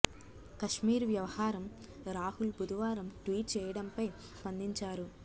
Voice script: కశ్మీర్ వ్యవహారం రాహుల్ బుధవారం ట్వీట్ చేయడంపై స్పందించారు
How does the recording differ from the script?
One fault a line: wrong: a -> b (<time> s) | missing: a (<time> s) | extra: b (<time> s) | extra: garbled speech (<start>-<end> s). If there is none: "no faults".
no faults